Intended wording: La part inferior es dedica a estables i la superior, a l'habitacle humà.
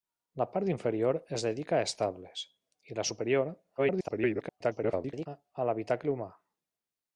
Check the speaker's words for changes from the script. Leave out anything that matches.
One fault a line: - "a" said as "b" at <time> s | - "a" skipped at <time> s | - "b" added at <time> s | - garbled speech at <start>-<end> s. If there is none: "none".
- garbled speech at 3.8-5.3 s